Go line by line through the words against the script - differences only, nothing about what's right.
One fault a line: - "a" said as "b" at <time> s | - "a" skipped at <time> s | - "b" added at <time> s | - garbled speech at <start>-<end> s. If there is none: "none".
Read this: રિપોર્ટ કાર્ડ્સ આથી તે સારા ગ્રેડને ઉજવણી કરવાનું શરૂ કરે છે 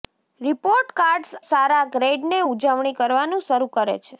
- "આથી તે" skipped at 1.3 s